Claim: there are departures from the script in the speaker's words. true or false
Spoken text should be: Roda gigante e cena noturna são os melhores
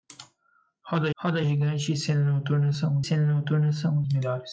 true